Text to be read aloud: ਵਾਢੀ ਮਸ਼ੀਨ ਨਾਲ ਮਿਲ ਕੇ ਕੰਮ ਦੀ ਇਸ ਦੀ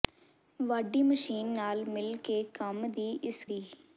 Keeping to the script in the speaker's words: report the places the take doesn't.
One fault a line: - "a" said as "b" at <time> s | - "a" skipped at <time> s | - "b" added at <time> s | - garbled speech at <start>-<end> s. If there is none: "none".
none